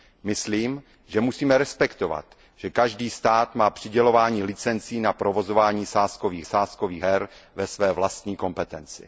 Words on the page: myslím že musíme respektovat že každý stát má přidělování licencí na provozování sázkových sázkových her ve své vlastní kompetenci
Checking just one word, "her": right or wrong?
right